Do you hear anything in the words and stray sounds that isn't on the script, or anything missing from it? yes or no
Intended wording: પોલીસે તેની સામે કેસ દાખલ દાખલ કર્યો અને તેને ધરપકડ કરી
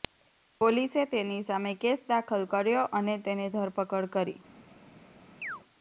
yes